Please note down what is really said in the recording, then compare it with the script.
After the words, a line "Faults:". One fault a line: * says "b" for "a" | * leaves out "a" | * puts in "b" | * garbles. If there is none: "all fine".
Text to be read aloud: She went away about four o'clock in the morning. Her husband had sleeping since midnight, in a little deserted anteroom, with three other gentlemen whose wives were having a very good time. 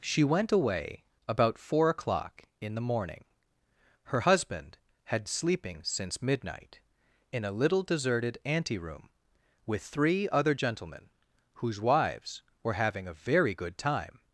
She went away about four o'clock in the morning. Her husband had sleeping since midnight, in a little deserted anteroom, with three other gentlemen whose wives were having a very good time.
Faults:
all fine